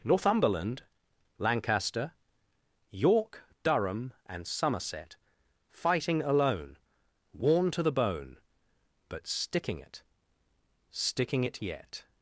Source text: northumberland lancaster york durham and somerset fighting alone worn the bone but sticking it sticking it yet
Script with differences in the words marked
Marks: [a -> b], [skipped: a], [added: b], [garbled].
northumberland lancaster york durham and somerset fighting alone worn [added: to] the bone but sticking it sticking it yet